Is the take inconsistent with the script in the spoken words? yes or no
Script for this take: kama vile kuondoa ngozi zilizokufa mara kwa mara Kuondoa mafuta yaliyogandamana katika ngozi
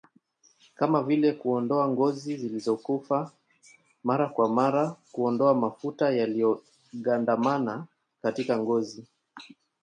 no